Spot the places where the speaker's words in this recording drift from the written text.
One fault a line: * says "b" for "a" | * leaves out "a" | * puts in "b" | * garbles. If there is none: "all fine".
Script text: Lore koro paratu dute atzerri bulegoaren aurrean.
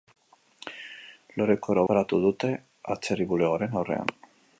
all fine